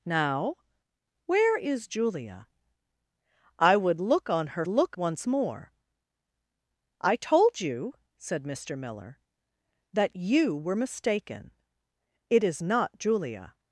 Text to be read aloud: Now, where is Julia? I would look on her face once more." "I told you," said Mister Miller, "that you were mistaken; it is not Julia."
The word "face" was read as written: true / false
false